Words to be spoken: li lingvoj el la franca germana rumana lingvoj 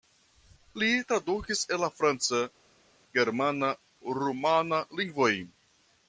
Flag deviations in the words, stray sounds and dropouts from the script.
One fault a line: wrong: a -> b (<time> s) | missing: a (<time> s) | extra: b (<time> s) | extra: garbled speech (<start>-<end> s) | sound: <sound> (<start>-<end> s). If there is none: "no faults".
wrong: lingvoj -> tradukis (1.1 s)